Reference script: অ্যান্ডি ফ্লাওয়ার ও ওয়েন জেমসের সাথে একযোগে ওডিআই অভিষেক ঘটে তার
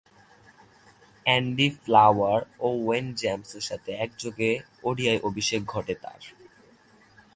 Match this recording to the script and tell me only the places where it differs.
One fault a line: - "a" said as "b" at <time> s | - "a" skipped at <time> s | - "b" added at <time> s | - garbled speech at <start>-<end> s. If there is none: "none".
none